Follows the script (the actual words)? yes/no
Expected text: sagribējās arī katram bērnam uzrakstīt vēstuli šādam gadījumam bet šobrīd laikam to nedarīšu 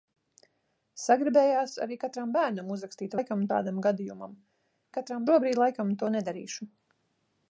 no